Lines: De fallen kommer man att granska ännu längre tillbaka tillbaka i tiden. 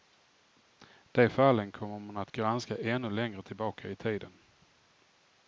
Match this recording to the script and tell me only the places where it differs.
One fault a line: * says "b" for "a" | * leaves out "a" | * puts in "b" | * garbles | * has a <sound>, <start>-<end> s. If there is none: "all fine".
* leaves out "tillbaka"